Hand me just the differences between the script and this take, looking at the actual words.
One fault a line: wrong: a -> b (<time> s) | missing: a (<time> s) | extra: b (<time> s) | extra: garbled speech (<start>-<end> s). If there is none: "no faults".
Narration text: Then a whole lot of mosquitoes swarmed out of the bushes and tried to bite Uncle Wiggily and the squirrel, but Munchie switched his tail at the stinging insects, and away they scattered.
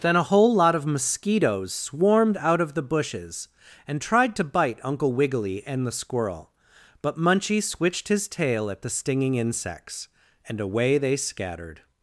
no faults